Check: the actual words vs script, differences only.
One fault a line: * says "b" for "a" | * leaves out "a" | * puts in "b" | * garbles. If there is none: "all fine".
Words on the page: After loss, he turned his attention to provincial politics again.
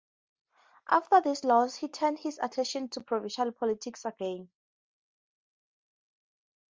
* puts in "this"